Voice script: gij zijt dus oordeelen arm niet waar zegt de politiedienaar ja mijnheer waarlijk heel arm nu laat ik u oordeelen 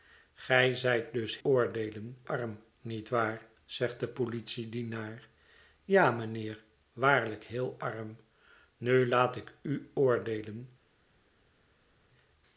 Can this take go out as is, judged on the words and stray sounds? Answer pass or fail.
pass